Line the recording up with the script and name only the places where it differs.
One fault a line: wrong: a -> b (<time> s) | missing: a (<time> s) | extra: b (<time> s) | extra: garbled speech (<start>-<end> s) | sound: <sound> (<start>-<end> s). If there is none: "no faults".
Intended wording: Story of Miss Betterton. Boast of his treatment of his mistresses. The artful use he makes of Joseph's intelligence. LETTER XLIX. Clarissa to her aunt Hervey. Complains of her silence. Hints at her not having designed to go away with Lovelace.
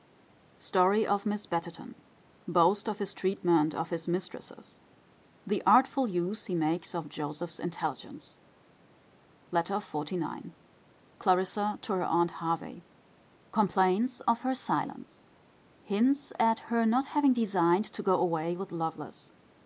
no faults